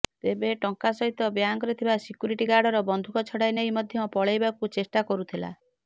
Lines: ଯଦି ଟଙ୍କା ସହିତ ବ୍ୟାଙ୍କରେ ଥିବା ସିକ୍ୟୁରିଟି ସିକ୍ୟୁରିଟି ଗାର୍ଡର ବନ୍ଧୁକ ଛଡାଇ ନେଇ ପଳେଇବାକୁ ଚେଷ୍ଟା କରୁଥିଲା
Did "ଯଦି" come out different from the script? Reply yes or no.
yes